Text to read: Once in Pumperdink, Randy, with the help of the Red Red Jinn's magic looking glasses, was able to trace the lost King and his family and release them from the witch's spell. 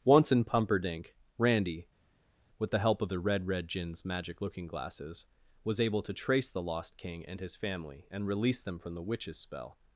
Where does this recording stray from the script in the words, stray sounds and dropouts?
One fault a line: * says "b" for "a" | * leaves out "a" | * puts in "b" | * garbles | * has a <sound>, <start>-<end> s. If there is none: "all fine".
all fine